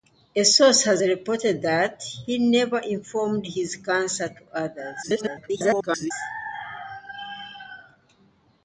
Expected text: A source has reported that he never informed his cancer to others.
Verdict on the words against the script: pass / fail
fail